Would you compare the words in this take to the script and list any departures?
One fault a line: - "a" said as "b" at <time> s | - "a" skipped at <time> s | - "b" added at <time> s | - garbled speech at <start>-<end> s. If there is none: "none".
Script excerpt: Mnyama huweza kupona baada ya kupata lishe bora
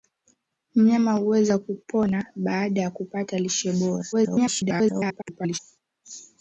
- garbled speech at 4.1-5.6 s